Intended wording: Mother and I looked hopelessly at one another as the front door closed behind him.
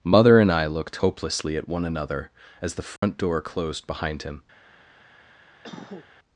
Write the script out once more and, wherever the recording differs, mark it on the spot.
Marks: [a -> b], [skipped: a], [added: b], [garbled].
Mother and I looked hopelessly at one another as the front door closed behind him.